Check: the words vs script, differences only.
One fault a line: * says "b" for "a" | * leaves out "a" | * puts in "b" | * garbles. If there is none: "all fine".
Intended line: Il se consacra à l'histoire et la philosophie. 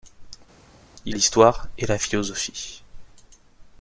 * leaves out "se consacra à"